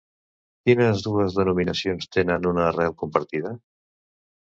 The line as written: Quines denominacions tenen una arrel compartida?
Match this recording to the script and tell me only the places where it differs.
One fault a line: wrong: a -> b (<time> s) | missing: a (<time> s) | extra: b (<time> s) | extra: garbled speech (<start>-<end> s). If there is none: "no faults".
extra: dues (1.1 s)